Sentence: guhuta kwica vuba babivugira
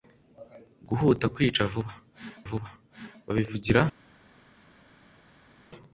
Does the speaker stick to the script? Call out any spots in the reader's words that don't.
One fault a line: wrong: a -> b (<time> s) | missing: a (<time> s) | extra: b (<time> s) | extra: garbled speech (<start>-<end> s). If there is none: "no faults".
extra: vuba (2.5 s)